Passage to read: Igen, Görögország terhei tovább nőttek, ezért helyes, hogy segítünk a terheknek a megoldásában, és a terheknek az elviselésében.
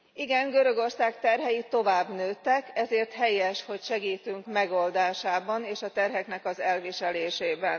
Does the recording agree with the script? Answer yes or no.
no